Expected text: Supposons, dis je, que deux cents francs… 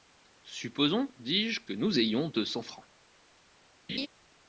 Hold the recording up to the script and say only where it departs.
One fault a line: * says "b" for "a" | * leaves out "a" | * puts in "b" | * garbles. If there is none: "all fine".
* puts in "nous ayons"